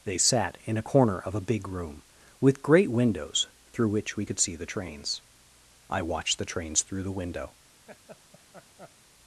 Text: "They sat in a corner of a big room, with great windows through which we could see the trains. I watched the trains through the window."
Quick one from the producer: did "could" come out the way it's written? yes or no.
yes